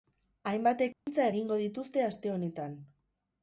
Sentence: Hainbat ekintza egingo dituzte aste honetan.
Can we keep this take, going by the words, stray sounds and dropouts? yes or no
no